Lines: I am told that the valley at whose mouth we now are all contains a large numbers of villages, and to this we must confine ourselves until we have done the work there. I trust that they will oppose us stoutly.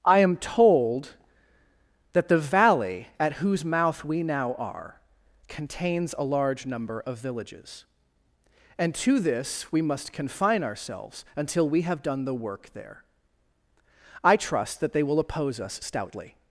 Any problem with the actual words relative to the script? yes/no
yes